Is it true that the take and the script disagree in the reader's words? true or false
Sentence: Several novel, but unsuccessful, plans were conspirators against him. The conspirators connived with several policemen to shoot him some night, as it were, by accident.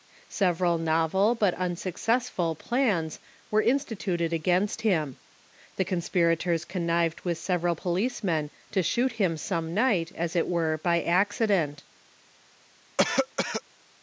true